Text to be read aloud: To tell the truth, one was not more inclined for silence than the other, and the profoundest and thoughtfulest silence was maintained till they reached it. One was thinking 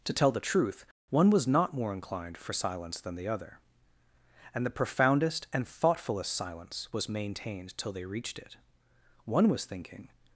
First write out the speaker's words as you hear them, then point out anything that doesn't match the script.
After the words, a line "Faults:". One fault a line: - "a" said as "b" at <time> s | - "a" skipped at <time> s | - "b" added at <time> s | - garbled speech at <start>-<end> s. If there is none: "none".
To tell the truth, one was not more inclined for silence than the other, and the profoundest and thoughtfulest silence was maintained till they reached it. One was thinking
Faults:
none